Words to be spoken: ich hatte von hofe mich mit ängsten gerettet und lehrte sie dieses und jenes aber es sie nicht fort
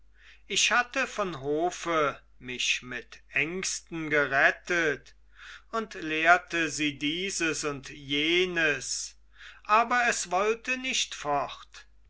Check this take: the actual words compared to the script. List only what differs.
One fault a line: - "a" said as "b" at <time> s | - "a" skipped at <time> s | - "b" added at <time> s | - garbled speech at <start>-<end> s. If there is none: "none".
- "sie" said as "wollte" at 10.3 s